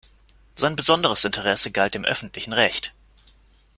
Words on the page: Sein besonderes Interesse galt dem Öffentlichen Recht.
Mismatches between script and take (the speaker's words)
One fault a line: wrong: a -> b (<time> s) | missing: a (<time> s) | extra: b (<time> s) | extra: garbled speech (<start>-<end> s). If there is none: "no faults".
no faults